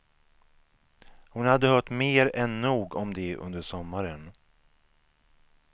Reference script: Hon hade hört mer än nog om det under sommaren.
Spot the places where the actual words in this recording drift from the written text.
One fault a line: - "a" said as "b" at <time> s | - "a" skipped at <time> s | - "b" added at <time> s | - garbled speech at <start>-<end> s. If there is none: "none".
none